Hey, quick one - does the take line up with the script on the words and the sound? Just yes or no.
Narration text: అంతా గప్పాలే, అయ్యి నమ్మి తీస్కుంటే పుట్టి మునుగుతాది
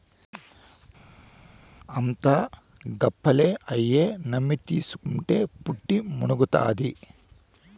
yes